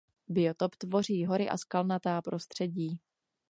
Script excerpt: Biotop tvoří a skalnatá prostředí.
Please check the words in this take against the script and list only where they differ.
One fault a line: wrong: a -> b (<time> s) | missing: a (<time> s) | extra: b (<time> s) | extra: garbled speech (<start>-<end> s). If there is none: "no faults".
extra: hory (1.2 s)